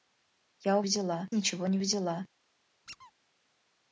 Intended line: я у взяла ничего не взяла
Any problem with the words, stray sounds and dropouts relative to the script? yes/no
yes